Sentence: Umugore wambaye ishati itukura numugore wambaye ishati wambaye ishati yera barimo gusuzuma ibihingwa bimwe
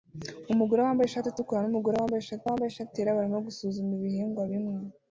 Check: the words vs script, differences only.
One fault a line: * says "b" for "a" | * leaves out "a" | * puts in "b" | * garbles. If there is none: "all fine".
all fine